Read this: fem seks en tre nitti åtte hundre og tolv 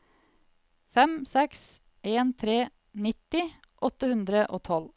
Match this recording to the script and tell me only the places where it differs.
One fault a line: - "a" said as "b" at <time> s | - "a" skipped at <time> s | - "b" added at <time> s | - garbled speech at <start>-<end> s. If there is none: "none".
none